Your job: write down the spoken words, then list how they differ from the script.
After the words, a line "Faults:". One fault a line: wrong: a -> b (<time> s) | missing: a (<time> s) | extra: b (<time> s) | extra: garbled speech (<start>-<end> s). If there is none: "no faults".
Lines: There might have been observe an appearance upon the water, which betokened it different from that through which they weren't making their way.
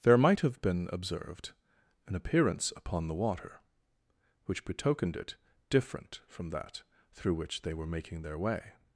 There might have been observed an appearance upon the water, which betokened it different from that through which they were making their way.
Faults:
wrong: observe -> observed (0.9 s)
wrong: weren't -> were (7.7 s)